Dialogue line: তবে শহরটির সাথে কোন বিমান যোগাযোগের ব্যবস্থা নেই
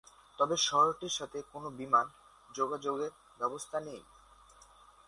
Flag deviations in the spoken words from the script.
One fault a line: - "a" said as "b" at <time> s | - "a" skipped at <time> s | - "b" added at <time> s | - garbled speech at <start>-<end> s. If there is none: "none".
none